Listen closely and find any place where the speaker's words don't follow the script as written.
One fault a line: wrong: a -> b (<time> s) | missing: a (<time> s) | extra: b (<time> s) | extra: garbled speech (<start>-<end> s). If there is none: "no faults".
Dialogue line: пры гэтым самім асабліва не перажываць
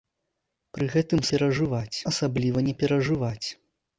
wrong: самім -> перажываць (1.3 s)